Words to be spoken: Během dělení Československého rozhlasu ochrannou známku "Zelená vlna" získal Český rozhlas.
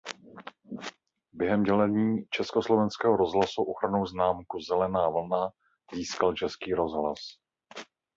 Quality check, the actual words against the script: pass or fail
pass